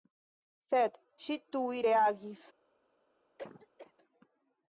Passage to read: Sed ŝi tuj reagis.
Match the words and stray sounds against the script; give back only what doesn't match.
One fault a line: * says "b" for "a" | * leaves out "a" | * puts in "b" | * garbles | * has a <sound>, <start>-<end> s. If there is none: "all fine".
* has a cough, 3.4-3.9 s